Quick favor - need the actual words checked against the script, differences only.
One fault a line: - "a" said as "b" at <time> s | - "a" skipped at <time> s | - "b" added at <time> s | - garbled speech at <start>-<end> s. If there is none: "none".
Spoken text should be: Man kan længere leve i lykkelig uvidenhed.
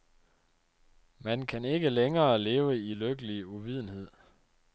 - "ikke" added at 1.6 s